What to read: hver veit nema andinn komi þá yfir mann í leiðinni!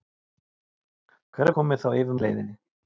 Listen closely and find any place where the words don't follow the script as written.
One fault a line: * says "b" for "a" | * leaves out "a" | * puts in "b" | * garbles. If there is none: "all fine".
* leaves out "veit nema andinn"
* leaves out "mann"